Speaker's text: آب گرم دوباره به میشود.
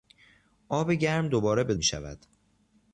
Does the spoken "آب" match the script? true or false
true